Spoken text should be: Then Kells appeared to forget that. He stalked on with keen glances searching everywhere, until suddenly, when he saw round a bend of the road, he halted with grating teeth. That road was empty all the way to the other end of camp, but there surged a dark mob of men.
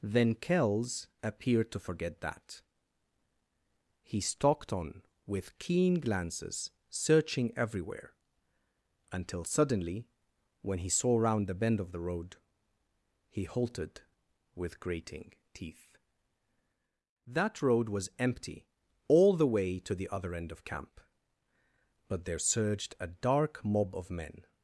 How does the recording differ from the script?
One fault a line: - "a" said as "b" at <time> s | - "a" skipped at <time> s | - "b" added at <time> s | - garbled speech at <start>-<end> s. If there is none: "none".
- "a" said as "the" at 11.5 s